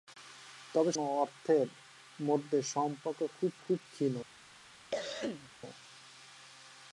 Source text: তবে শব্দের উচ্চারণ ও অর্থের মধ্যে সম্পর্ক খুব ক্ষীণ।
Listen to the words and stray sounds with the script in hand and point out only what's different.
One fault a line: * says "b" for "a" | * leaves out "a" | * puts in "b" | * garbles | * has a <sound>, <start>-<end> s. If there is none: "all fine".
* leaves out "শব্দের উচ্চারণ"
* puts in "খুব"
* has a cough, 4.9-5.5 s